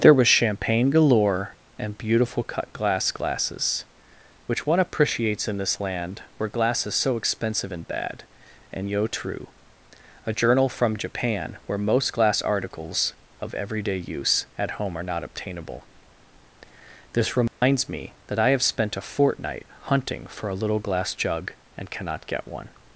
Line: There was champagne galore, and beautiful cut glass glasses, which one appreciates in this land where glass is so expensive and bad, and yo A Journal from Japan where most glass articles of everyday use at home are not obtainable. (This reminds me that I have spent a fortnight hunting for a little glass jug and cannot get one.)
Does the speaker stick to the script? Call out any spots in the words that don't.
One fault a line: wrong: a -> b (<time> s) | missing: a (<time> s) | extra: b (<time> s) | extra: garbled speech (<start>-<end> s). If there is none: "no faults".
extra: true (9.1 s)